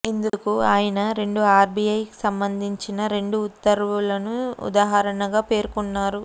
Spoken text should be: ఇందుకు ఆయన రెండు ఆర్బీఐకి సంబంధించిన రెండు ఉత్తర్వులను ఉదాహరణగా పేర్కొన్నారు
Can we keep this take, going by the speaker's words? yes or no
yes